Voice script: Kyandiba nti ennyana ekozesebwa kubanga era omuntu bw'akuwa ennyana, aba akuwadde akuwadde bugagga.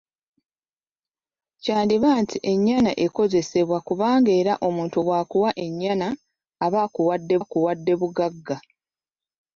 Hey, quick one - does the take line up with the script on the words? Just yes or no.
yes